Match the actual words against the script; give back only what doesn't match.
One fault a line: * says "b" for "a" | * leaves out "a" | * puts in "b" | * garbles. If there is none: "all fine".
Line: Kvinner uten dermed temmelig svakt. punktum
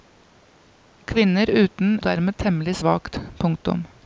all fine